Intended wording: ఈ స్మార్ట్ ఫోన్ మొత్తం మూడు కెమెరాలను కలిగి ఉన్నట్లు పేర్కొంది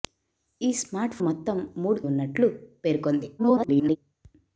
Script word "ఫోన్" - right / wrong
wrong